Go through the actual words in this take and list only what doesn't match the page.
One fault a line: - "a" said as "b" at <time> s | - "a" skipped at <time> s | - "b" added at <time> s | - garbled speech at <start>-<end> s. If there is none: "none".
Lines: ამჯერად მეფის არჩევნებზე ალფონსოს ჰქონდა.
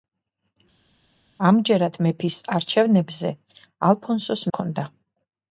none